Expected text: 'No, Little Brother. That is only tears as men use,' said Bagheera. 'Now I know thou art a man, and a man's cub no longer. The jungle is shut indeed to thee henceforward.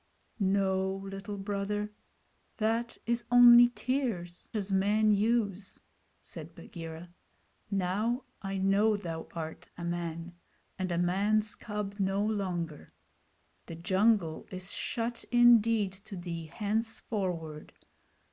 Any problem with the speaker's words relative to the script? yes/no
no